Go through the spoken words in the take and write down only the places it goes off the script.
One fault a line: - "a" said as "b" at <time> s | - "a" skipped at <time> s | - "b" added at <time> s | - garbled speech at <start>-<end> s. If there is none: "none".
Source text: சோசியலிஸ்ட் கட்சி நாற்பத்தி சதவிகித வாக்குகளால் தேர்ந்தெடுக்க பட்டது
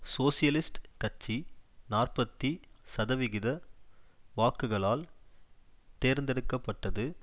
none